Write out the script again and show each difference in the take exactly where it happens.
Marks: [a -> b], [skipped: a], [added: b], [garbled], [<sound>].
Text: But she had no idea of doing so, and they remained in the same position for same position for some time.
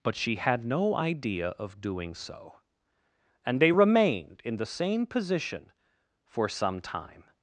But she had no idea of doing so, and they remained in the same position for [skipped: same position for] some time.